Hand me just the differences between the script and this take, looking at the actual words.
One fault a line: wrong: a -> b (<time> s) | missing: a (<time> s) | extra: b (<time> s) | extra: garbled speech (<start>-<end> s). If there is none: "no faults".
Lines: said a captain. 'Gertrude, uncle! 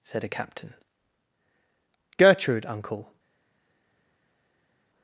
no faults